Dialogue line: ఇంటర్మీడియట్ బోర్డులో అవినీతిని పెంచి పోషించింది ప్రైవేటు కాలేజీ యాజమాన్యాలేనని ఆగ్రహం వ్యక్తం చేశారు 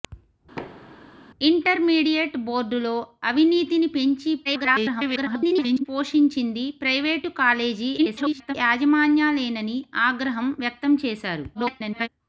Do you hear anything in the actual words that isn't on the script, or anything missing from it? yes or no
yes